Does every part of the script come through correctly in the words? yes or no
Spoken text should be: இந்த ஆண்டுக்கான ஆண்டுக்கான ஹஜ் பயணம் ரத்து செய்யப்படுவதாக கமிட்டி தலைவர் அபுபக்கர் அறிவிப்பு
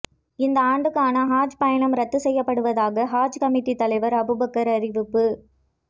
no